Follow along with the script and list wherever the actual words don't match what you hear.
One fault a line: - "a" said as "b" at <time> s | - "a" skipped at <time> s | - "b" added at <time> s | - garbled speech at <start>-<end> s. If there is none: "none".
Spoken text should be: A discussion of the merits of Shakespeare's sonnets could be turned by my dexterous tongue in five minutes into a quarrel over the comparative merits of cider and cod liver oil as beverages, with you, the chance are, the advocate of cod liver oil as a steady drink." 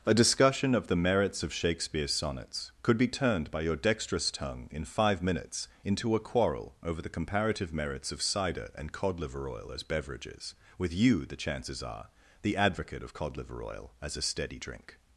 - "my" said as "your" at 3.6 s
- "chance" said as "chances" at 11.3 s